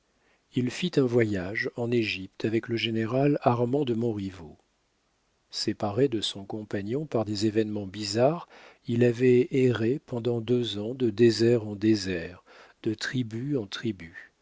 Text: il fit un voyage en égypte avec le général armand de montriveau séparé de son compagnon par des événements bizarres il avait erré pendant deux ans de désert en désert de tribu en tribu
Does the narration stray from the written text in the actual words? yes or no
no